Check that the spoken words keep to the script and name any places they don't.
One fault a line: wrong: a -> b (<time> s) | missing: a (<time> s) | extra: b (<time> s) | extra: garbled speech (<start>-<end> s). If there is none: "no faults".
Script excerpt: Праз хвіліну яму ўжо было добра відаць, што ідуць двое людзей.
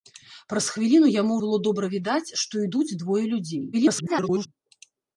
missing: ўжо (1.3 s)
extra: garbled speech (3.7-4.5 s)